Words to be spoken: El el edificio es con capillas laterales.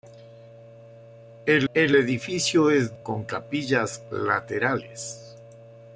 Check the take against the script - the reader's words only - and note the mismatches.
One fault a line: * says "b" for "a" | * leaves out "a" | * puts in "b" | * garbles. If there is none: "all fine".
all fine